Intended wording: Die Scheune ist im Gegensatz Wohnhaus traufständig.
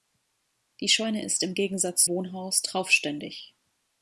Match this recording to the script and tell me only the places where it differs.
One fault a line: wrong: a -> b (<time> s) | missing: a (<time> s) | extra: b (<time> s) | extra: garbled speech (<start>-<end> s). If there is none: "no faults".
no faults